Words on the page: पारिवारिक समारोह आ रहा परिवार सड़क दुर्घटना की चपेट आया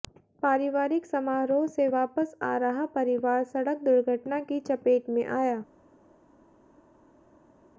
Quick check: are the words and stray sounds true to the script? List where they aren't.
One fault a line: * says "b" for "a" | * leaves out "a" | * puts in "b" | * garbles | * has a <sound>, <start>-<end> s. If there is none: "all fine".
* puts in "से वापस"
* puts in "में"